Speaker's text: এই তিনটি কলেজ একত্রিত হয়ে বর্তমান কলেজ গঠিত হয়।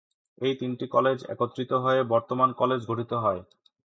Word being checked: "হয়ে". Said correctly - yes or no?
yes